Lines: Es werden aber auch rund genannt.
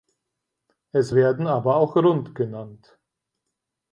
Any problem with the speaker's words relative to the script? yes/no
no